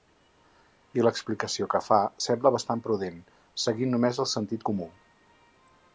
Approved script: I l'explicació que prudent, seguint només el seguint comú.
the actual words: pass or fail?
fail